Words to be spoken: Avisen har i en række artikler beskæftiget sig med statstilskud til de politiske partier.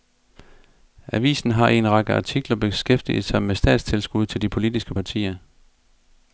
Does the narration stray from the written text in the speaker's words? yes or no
no